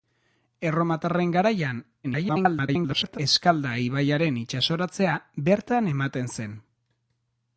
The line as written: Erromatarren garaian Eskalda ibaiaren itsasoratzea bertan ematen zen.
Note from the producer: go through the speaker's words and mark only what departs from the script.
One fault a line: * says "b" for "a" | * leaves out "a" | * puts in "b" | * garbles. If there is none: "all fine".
* garbles